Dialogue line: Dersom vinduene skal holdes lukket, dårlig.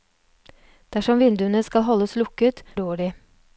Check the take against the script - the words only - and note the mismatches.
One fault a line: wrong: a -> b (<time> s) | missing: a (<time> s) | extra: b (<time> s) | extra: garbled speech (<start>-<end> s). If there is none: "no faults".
no faults